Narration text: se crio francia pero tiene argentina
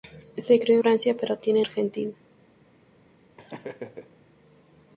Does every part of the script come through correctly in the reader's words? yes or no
yes